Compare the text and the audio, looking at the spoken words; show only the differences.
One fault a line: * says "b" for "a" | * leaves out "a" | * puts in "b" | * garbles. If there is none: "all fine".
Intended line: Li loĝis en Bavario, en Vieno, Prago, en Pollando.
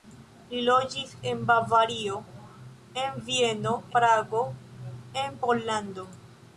all fine